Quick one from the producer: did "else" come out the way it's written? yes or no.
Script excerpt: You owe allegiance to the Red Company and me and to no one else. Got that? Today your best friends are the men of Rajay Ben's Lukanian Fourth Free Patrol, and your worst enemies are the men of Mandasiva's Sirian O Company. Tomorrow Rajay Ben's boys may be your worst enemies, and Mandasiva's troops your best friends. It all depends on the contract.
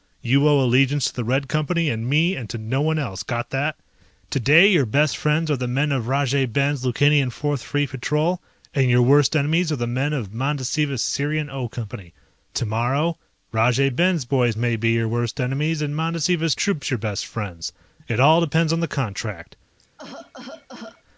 yes